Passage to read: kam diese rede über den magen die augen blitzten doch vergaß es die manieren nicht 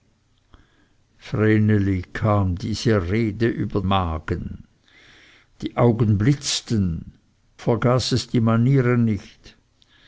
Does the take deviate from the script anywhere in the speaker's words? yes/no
yes